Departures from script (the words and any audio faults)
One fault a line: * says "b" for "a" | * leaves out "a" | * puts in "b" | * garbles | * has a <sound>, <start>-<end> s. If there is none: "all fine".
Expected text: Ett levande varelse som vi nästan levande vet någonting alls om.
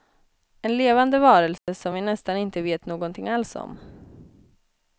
* says "En" for "Ett"
* has a dropout, 1.6-1.7 s
* says "inte" for "levande"